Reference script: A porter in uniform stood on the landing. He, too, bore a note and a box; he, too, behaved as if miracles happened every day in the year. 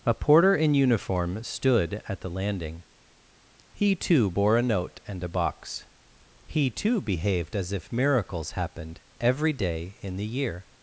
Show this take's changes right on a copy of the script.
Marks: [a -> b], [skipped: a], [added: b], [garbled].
A porter in uniform stood [on -> at] the landing. He, too, bore a note and a box; he, too, behaved as if miracles happened every day in the year.